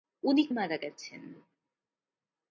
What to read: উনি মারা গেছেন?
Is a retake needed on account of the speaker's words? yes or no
no